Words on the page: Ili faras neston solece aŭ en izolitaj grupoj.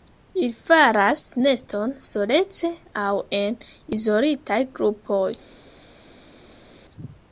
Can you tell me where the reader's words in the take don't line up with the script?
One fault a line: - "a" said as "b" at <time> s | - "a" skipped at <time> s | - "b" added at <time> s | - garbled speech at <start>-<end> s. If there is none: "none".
none